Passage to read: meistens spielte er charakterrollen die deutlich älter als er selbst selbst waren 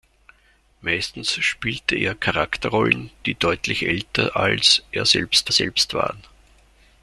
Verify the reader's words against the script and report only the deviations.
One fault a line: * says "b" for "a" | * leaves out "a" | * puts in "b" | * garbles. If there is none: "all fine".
all fine